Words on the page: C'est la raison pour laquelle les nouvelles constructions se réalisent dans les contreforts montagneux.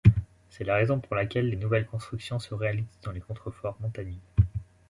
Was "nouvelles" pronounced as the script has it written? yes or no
yes